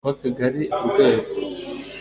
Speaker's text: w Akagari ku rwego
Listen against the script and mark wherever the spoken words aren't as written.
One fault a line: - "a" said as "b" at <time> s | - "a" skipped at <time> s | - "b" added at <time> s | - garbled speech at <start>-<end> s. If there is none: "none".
none